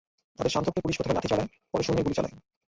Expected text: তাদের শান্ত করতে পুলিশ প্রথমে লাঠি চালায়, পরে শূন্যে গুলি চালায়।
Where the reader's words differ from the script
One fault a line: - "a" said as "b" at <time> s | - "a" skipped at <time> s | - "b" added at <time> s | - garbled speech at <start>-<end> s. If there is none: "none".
none